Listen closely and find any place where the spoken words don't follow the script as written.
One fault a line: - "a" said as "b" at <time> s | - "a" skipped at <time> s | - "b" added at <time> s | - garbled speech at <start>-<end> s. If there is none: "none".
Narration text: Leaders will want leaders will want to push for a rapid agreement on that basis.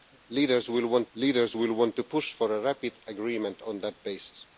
none